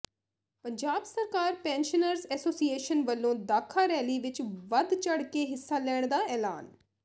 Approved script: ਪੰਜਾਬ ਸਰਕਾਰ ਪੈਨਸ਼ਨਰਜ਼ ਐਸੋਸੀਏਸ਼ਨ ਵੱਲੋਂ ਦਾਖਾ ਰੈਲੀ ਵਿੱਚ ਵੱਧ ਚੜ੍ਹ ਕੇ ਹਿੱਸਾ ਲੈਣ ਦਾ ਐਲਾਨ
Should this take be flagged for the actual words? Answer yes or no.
no